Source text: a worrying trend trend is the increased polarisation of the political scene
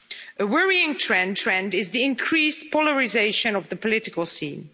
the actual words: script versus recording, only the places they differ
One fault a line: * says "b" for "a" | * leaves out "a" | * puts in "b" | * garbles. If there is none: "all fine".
all fine